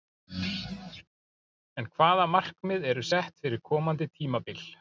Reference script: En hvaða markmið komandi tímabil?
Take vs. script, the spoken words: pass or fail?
fail